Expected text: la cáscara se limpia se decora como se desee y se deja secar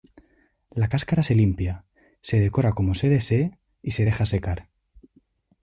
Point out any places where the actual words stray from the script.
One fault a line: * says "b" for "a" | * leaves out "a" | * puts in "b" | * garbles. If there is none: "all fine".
all fine